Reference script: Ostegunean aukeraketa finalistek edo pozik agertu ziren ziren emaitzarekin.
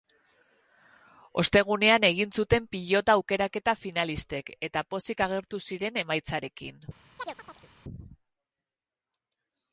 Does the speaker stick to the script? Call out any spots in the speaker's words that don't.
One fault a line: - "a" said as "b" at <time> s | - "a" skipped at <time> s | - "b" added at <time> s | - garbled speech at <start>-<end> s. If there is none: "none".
- "egin zuten pilota" added at 2.1 s
- "edo" said as "eta" at 4.7 s
- "ziren" skipped at 6.0 s